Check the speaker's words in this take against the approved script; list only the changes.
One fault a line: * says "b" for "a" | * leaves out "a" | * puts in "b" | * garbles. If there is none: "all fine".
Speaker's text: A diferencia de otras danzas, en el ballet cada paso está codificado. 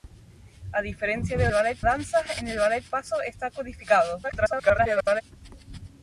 * says "ballet" for "otras"
* leaves out "cada"
* garbles